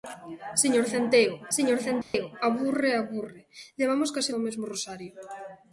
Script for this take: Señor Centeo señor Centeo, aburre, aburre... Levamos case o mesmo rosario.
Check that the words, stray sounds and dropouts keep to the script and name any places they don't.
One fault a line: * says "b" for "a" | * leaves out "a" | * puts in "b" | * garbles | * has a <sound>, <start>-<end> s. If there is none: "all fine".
* has a dropout, 2.0-2.1 s